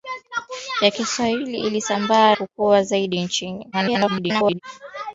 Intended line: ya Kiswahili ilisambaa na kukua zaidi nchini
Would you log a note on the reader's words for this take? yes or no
yes